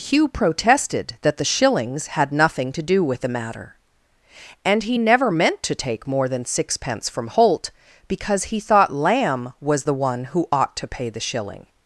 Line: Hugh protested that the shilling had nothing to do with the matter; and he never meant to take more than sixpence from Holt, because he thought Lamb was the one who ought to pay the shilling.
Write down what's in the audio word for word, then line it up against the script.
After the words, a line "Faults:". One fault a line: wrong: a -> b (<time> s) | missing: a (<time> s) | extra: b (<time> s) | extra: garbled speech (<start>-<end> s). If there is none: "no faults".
Hugh protested that the shillings had nothing to do with the matter; and he never meant to take more than sixpence from Holt, because he thought Lamb was the one who ought to pay the shilling.
Faults:
wrong: shilling -> shillings (1.4 s)